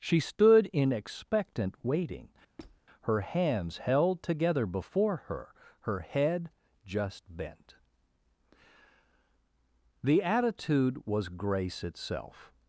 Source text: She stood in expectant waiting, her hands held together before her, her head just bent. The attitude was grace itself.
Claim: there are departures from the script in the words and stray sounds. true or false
true